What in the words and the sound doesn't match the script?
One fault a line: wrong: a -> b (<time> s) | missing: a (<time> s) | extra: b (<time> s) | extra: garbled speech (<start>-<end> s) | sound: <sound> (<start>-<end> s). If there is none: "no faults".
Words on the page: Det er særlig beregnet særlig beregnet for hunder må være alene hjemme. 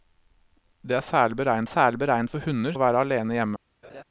sound: laugh (3.8-4.0 s)